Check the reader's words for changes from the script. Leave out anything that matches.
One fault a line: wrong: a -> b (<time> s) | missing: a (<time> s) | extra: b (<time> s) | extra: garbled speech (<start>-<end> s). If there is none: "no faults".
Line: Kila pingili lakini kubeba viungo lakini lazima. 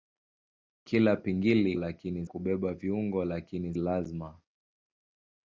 no faults